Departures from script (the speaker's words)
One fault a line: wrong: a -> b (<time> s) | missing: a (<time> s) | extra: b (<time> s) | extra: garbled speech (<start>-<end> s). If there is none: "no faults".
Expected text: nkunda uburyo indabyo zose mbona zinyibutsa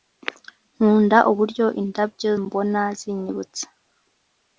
missing: zose (2.3 s)